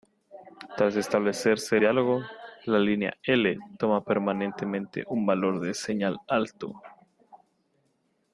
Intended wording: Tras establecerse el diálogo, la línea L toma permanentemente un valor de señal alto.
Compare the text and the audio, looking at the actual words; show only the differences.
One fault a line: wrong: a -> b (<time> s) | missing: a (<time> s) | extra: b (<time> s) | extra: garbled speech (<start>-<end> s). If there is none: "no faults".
missing: el (1.8 s)